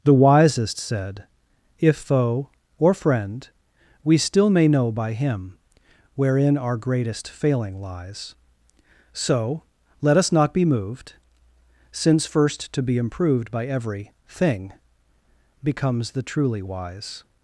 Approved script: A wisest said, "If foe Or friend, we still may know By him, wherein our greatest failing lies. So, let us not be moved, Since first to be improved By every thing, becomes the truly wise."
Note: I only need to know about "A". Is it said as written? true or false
false